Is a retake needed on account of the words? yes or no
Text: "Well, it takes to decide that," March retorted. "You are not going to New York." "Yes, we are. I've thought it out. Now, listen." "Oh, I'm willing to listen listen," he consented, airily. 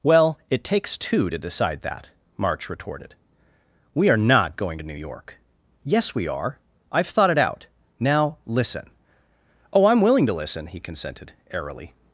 yes